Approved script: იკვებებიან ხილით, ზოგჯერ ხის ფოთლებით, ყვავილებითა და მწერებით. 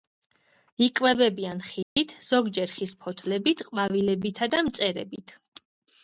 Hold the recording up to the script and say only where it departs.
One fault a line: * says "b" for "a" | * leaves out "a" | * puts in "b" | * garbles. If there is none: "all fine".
all fine